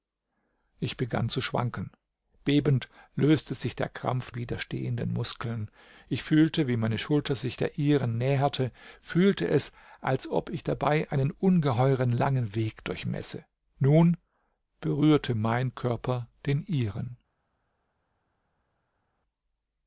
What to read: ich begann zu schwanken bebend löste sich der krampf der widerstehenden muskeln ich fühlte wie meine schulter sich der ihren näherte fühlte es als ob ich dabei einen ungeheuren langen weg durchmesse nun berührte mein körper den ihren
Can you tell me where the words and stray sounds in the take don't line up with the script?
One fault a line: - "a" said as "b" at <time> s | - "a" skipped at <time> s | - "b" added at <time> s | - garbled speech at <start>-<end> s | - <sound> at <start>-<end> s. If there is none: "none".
- "der" skipped at 4.3 s